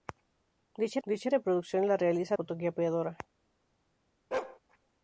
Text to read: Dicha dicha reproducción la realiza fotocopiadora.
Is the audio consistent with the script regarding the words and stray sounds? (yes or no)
no